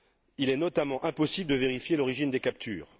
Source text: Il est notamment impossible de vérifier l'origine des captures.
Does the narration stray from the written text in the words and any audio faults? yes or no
no